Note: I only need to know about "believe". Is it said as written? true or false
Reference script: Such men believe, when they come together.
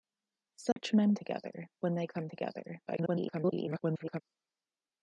false